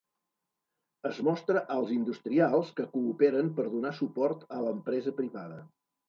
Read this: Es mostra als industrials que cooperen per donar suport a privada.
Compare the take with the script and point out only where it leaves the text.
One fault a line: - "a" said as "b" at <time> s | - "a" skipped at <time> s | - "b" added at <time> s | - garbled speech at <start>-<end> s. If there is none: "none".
- "l'empresa" added at 4.7 s